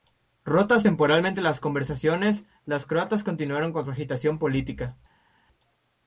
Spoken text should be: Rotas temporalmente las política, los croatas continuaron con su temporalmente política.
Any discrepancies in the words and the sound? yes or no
yes